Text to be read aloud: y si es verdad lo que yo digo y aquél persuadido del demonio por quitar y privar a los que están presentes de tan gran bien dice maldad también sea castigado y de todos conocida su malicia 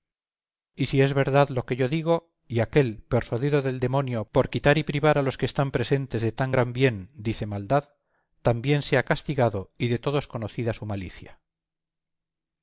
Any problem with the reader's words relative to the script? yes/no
no